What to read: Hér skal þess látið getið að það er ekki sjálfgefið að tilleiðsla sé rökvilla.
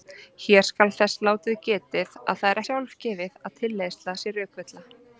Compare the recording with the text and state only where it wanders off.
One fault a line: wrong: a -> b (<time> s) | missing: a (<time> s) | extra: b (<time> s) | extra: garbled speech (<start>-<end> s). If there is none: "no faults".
missing: ekki (2.6 s)